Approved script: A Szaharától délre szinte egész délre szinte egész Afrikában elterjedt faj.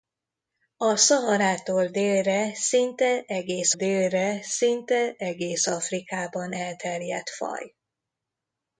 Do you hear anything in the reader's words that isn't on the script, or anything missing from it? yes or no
no